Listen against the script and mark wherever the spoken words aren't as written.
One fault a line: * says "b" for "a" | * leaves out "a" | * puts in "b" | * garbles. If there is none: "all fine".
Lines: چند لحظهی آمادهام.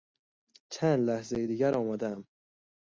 * puts in "دیگر"